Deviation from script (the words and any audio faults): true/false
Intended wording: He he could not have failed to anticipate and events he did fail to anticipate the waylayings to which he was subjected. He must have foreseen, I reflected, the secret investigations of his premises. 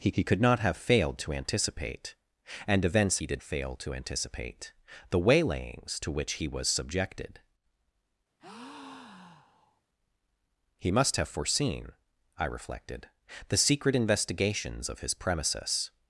true